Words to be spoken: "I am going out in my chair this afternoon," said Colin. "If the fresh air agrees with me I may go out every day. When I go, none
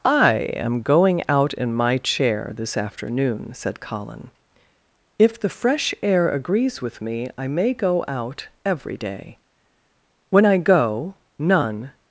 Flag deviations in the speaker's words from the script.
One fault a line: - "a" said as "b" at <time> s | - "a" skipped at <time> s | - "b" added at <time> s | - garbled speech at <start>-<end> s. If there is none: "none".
none